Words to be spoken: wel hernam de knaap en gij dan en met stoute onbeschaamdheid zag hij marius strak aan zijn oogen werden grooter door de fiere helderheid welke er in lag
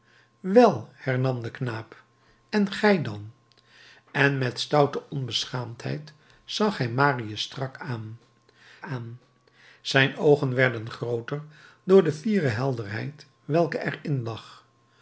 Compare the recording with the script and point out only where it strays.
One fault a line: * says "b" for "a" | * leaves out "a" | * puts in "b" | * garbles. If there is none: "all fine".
* puts in "aan"